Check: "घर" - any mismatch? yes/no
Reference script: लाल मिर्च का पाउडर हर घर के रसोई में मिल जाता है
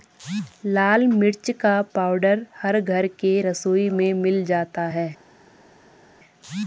no